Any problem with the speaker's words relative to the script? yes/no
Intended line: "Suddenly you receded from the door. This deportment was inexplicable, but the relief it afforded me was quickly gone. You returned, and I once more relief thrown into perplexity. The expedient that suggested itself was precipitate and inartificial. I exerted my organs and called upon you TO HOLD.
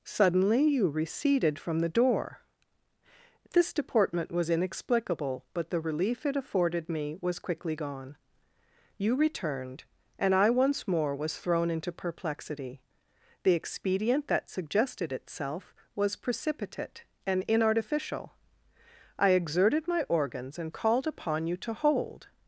yes